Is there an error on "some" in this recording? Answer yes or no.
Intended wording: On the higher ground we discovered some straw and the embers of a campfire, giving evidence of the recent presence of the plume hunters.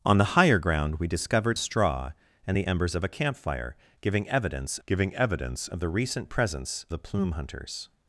yes